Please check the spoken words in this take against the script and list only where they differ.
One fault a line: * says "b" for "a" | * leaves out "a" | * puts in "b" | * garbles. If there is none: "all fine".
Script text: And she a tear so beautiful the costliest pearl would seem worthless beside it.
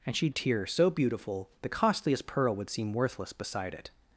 all fine